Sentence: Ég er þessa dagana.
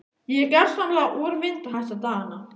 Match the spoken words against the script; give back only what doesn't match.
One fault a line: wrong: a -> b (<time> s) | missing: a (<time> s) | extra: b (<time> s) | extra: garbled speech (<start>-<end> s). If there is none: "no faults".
extra: gersamlega úrvinda (0.5 s)